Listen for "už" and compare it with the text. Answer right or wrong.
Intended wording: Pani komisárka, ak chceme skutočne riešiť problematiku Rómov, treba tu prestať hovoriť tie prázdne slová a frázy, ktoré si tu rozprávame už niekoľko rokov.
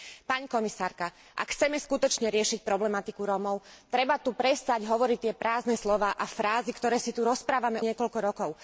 wrong